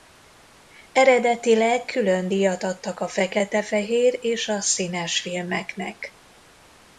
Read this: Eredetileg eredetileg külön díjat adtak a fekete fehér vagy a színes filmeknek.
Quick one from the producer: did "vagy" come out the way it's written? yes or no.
no